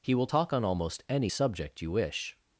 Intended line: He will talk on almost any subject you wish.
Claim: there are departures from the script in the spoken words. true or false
false